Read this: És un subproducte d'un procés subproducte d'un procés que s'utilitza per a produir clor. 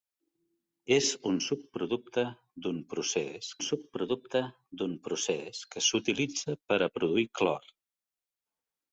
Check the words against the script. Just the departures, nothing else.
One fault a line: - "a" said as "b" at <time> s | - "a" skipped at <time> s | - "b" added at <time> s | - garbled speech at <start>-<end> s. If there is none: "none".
none